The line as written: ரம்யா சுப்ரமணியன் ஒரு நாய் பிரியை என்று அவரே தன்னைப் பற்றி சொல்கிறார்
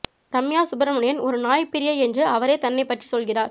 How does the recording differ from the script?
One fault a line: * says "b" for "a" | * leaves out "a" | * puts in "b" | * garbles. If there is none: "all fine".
all fine